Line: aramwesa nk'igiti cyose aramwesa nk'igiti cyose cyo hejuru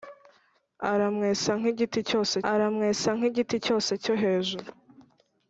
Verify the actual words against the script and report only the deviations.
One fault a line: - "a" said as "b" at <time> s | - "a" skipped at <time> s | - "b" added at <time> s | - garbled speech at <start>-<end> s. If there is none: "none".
none